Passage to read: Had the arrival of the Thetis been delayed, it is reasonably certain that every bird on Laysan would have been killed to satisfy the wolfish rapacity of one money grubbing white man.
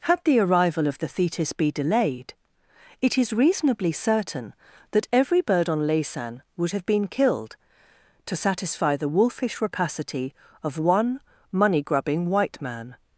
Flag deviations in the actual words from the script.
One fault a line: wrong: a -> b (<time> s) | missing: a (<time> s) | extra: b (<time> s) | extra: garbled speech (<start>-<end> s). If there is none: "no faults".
wrong: been -> be (1.5 s)